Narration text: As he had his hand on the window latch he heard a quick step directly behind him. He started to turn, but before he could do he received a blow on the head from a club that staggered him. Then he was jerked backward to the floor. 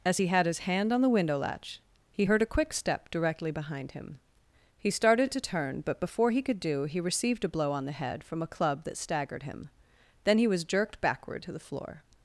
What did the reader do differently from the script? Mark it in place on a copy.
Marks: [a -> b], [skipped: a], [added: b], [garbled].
As he had his hand on the window latch he heard a quick step directly behind him. He started to turn, but before he could do he received a blow on the head from a club that staggered him. Then he was jerked backward to the floor.